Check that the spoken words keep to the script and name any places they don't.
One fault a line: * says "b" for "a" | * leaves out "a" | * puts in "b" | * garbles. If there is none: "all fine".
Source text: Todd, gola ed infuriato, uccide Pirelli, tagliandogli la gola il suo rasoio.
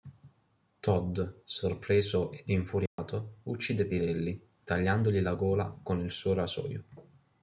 * says "sorpreso" for "gola"
* puts in "con"